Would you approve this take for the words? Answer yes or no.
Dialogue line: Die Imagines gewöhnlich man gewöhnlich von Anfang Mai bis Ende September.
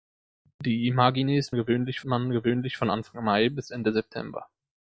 yes